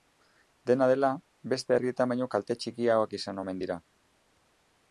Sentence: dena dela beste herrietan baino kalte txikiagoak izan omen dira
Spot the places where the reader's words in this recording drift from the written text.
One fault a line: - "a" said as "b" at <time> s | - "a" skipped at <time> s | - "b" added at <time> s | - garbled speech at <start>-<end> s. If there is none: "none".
none